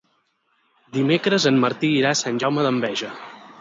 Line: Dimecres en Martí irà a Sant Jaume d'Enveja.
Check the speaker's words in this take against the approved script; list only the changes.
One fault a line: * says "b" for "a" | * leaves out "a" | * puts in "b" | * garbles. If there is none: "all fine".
all fine